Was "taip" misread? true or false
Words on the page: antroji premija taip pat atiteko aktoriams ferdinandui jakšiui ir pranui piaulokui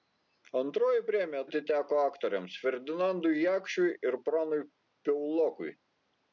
true